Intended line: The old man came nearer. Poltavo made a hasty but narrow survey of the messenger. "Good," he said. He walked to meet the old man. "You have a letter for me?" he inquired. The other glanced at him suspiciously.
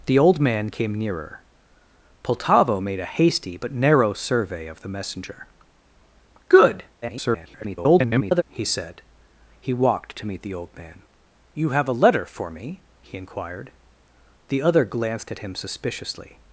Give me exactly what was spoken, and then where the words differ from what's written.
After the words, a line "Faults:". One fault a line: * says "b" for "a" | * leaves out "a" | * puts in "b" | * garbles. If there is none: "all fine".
The old man came nearer. Poltavo made a hasty but narrow survey of the messenger. "Good," [garbled] he said. He walked to meet the old man. "You have a letter for me?" he inquired. The other glanced at him suspiciously.
Faults:
* garbles